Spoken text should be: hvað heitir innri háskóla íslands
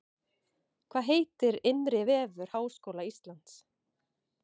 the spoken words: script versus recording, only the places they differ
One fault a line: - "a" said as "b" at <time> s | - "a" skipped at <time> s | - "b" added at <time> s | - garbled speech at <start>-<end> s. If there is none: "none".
- "vefur" added at 2.1 s